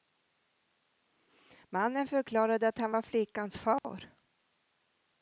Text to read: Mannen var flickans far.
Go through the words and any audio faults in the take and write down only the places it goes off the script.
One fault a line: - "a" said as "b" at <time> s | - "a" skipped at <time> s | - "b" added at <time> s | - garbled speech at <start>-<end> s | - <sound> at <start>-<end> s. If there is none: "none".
- "förklarade att han" added at 2.1 s
- dropout at 3.8-3.8 s